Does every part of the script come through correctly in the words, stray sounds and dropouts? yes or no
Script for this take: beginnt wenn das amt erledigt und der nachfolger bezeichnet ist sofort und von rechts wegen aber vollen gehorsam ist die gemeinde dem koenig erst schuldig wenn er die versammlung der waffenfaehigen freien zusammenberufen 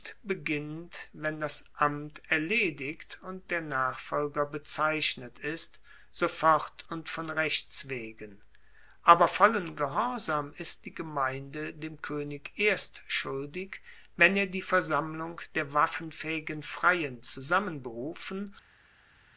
yes